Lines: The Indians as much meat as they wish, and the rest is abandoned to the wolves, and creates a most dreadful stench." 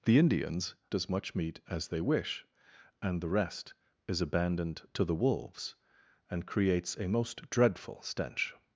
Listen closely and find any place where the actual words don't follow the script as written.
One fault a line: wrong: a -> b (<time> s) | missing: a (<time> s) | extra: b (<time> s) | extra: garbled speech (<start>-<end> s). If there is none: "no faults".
no faults